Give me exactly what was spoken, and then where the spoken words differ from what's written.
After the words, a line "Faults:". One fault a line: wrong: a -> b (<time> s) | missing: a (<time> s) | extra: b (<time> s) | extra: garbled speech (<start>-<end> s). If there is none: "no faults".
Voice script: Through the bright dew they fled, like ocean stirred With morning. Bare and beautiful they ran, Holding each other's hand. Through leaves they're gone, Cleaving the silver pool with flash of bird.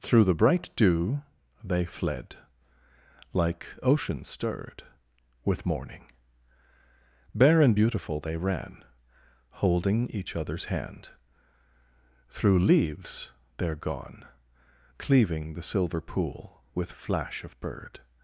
Through the bright dew they fled, like ocean stirred With morning. Bare and beautiful they ran, Holding each other's hand. Through leaves they're gone, Cleaving the silver pool with flash of bird.
Faults:
no faults